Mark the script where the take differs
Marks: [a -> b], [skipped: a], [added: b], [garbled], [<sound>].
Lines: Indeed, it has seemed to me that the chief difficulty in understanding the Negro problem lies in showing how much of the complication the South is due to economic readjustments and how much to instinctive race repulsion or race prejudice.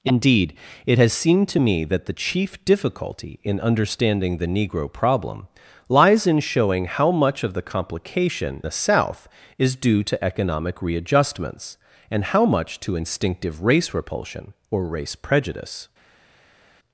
Indeed, it has seemed to me that the chief difficulty in understanding the Negro problem lies in showing how much of the complication the South is due to economic readjustments and how much to instinctive race repulsion or race prejudice.